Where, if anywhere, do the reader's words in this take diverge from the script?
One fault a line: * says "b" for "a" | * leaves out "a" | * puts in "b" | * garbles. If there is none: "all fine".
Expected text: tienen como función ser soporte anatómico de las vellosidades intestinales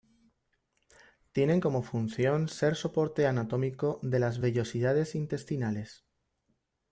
all fine